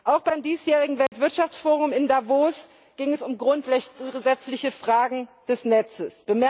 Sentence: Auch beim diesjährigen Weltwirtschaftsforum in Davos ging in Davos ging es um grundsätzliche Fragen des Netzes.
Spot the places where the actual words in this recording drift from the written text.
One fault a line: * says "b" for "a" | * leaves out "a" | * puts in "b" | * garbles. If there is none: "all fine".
* leaves out "in Davos ging"